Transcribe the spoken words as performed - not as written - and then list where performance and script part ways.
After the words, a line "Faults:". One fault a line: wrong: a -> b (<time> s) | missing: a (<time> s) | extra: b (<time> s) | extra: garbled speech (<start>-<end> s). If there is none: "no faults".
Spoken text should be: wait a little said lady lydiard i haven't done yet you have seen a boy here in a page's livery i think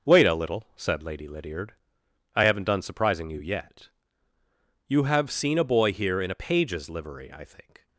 wait a little said lady lydiard i haven't done surprising you yet you have seen a boy here in a page's livery i think
Faults:
extra: surprising you (2.8 s)